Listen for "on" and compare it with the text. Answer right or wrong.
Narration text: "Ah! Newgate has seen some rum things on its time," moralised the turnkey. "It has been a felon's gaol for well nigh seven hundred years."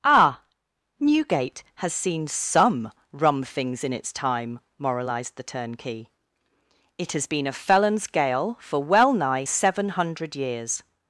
wrong